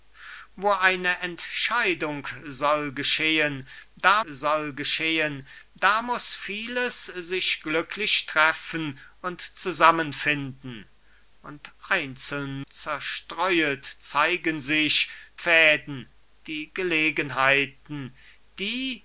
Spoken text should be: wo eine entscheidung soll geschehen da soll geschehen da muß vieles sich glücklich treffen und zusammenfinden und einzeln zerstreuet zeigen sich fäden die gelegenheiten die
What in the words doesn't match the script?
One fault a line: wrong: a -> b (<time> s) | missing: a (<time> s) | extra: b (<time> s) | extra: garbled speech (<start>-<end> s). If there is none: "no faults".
no faults